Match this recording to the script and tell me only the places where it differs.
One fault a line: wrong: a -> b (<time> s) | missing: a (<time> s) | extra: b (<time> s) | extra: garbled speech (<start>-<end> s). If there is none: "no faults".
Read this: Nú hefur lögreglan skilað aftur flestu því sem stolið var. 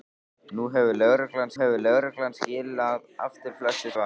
extra: hefur lögreglan (1.6 s)
missing: því sem stolið (3.9 s)